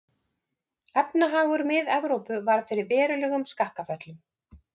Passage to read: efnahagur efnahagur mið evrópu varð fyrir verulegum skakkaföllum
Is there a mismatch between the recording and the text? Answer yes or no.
yes